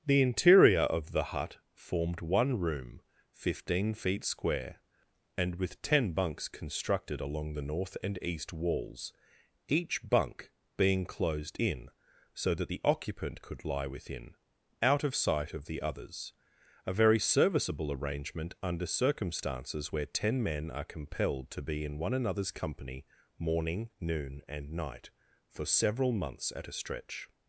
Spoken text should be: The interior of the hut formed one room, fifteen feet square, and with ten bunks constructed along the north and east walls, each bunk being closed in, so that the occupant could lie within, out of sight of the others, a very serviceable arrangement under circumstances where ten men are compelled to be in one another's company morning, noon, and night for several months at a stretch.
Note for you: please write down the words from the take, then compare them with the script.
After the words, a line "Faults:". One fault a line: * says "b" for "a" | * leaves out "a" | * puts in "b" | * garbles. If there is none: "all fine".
The interior of the hut formed one room, fifteen feet square, and with ten bunks constructed along the north and east walls, each bunk being closed in, so that the occupant could lie within, out of sight of the others, a very serviceable arrangement under circumstances where ten men are compelled to be in one another's company morning, noon, and night for several months at a stretch.
Faults:
all fine